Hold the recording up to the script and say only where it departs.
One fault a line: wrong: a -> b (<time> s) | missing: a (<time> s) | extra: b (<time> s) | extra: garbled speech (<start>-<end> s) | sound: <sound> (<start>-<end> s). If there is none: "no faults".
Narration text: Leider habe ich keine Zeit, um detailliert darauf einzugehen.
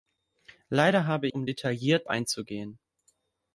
missing: ich keine Zeit (1.3 s)
missing: darauf (2.1 s)